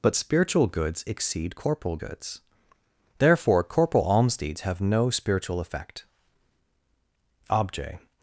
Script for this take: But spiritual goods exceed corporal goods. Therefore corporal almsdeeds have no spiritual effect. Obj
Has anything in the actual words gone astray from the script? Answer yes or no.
no